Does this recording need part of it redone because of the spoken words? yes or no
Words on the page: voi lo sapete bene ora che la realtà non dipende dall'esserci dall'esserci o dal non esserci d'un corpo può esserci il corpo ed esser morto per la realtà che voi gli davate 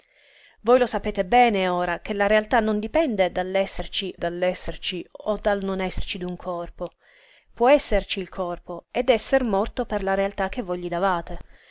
no